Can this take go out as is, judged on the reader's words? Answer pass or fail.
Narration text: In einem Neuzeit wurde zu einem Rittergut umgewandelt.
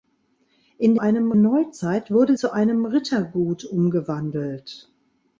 pass